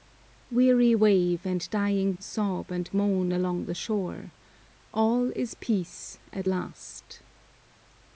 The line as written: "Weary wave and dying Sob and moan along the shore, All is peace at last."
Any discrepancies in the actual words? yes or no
no